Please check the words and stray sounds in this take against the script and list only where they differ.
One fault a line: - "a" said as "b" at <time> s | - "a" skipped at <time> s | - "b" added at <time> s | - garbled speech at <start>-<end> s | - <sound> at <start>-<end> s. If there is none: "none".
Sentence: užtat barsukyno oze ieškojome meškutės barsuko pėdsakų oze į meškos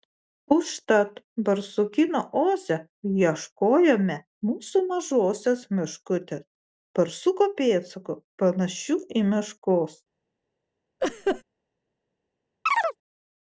- "mūsų mažosios" added at 4.5 s
- "oze" said as "panašių" at 8.4 s
- laugh at 11.0-11.4 s
- chirp at 12.7-13.0 s